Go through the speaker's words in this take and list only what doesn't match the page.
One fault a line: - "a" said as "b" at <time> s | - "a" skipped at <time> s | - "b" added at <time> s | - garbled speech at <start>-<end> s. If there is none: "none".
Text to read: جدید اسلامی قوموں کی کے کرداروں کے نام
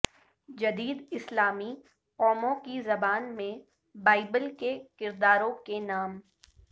- "زبان میں بائبل" added at 2.8 s